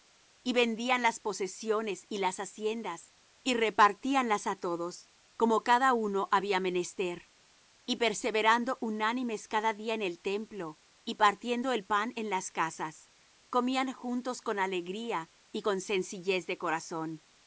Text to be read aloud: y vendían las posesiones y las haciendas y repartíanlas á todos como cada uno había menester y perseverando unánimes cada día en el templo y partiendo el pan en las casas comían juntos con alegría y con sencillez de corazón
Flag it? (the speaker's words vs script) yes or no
no